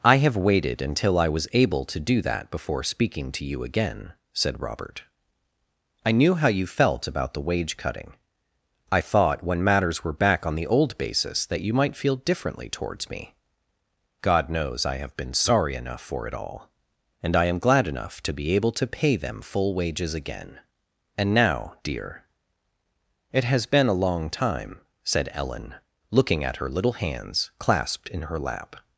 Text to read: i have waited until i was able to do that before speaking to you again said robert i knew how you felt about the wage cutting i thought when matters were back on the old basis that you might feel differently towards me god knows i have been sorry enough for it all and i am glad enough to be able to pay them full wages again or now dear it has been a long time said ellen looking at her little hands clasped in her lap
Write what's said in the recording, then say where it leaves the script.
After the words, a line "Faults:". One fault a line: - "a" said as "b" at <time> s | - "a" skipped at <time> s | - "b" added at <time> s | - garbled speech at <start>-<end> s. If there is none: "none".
i have waited until i was able to do that before speaking to you again said robert i knew how you felt about the wage cutting i thought when matters were back on the old basis that you might feel differently towards me god knows i have been sorry enough for it all and i am glad enough to be able to pay them full wages again and now dear it has been a long time said ellen looking at her little hands clasped in her lap
Faults:
- "or" said as "and" at 21.1 s